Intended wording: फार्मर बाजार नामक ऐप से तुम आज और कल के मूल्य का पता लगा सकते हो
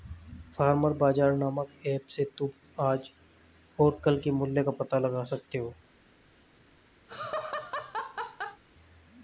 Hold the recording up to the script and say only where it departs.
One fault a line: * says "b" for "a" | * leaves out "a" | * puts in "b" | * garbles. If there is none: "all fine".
all fine